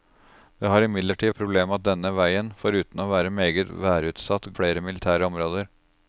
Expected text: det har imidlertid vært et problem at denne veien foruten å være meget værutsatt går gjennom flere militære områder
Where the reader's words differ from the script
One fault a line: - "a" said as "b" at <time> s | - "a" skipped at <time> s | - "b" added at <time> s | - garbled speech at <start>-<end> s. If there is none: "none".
- "vært" skipped at 1.3 s
- "går gjennom" skipped at 4.5 s